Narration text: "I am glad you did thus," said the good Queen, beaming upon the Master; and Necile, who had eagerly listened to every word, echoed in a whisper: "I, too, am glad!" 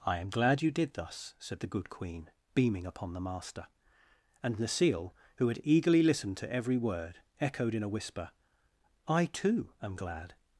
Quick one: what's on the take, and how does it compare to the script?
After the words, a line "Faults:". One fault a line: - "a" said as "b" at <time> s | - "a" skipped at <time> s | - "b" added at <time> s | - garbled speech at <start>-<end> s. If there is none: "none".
"I am glad you did thus," said the good Queen, beaming upon the Master; and Necile, who had eagerly listened to every word, echoed in a whisper: "I, too, am glad!"
Faults:
none